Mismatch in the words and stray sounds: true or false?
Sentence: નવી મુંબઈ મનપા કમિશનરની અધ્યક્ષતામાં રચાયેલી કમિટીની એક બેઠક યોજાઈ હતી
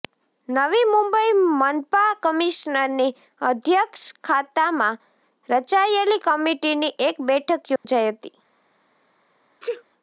true